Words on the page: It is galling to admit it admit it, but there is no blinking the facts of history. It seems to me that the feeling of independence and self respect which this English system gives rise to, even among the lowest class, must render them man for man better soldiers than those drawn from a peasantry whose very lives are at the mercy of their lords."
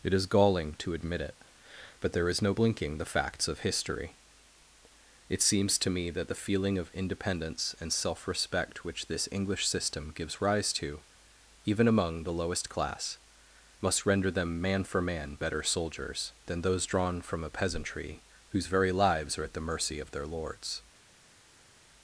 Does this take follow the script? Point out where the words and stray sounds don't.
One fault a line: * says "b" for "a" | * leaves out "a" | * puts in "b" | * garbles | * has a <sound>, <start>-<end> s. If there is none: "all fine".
* leaves out "admit it"